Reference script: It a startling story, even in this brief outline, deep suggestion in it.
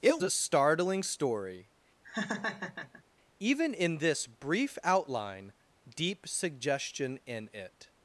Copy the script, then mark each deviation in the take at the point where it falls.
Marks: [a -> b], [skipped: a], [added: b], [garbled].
It a startling story, even in this brief outline, deep suggestion in it.